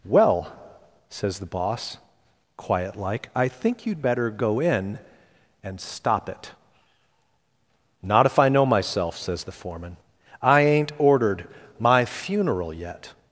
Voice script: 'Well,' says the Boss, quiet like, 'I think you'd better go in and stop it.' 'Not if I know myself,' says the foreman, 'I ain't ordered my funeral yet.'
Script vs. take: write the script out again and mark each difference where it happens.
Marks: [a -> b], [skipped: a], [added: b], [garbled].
'Well,' says the Boss, quiet like, 'I think you'd better go in and stop it.' 'Not if I know myself,' says the foreman, 'I ain't ordered my funeral yet.'